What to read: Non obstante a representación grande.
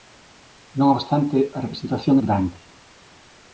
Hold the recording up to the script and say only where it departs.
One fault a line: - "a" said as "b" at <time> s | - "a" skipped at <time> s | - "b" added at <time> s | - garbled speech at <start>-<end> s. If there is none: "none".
none